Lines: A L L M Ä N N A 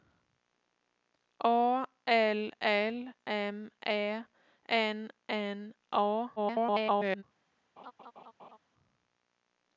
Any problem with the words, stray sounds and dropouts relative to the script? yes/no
yes